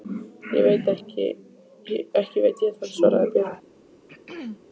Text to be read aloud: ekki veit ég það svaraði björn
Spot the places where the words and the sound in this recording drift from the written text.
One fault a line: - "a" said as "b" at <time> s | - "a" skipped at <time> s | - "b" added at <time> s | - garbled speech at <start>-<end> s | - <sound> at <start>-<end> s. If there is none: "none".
- throat clearing at 4.1-4.6 s